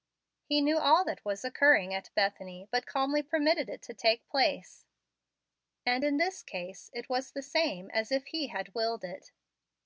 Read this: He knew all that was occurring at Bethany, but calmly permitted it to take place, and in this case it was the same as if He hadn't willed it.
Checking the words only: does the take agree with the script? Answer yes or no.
no